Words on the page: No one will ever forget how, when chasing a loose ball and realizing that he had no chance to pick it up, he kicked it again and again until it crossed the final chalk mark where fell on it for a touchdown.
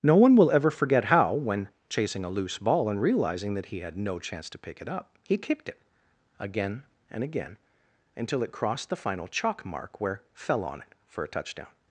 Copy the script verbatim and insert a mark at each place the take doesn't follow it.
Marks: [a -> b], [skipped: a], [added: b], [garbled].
No one will ever forget how, when chasing a loose ball and realizing that he had no chance to pick it up, he kicked it again and again until it crossed the final chalk mark where fell on it for a touchdown.